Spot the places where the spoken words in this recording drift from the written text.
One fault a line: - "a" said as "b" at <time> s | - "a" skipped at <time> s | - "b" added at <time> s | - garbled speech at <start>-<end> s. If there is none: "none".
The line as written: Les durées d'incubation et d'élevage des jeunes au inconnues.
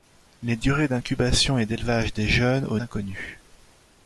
none